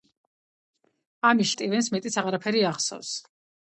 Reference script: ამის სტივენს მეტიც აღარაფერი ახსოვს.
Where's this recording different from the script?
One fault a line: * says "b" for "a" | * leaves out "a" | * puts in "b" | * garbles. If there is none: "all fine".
all fine